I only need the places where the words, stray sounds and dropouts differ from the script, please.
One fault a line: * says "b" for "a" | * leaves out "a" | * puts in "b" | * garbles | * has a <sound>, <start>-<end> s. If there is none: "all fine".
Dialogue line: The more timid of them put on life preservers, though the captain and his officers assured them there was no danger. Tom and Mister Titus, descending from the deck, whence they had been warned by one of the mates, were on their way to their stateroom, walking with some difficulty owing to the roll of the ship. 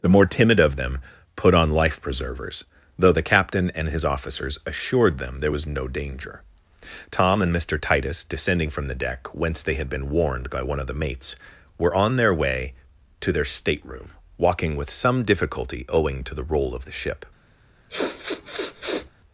* has a sniff, 17.9-19.1 s